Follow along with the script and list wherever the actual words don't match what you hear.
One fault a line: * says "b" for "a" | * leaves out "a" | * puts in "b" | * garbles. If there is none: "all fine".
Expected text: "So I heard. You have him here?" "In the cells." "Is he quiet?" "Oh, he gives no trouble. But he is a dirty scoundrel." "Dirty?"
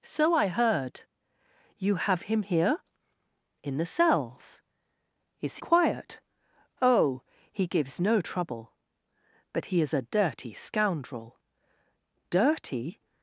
* leaves out "he"